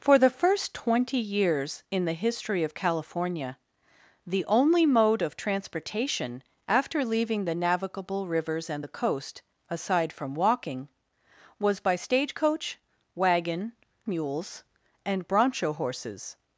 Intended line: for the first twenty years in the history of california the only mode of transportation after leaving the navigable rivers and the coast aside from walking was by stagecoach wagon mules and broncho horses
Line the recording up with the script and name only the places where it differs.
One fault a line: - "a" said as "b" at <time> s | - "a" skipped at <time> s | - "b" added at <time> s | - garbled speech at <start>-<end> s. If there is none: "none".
none